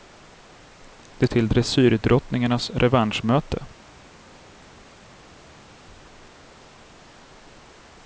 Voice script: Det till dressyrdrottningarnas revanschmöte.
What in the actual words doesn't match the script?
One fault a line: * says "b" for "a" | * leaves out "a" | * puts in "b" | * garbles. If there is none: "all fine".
all fine